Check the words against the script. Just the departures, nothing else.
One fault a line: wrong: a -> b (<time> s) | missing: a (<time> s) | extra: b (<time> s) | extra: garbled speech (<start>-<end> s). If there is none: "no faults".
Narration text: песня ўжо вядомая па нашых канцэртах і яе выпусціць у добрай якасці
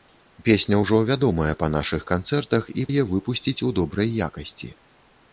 no faults